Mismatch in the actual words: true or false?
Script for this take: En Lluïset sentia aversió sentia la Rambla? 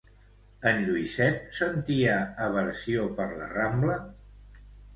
true